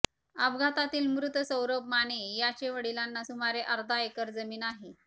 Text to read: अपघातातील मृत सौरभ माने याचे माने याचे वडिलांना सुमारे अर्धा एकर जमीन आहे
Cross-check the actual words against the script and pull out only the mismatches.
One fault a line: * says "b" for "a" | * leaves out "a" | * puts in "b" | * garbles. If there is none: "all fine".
* leaves out "माने याचे"